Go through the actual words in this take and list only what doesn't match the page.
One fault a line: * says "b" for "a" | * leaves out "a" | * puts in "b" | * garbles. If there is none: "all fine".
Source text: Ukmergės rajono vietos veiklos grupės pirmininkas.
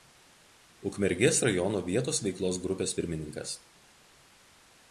all fine